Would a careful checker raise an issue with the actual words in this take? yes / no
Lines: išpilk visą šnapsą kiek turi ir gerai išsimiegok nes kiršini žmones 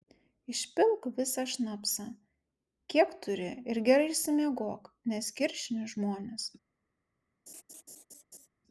no